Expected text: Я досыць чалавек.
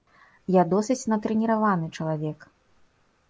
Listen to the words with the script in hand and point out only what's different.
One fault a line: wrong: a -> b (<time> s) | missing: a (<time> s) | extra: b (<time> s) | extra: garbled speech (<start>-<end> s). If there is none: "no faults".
extra: натрэніраваны (1.1 s)